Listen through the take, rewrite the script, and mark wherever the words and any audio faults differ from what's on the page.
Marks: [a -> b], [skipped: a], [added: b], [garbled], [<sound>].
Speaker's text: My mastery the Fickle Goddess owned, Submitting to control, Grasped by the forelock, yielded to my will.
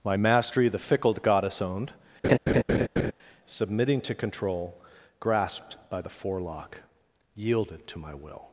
My mastery the Fickle Goddess owned, [laugh] Submitting to control, Grasped by the forelock, yielded to my will.